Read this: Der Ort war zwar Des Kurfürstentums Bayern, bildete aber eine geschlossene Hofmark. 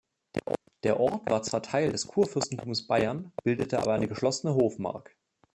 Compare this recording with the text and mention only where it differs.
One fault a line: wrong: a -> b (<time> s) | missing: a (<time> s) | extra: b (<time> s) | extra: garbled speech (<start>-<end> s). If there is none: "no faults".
extra: Teil (1.6 s)